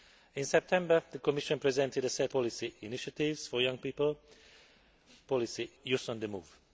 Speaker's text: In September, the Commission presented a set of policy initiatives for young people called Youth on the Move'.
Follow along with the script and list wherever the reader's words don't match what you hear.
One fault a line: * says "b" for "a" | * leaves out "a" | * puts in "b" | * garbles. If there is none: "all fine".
* leaves out "of"
* says "policy" for "called"